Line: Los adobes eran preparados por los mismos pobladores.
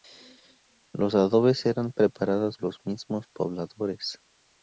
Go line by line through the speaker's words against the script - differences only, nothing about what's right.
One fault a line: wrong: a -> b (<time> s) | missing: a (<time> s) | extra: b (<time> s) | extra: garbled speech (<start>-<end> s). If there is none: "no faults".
missing: por (2.6 s)